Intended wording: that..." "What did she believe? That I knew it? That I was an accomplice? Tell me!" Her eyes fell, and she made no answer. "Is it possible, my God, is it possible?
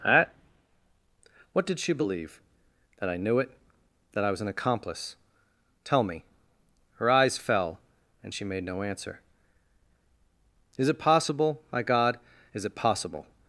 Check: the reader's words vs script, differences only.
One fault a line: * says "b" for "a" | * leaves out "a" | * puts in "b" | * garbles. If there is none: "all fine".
all fine